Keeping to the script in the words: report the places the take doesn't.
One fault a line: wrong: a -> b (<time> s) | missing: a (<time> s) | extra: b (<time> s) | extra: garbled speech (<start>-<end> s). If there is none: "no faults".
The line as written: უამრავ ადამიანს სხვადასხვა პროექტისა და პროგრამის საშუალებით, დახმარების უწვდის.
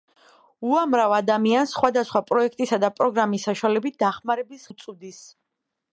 no faults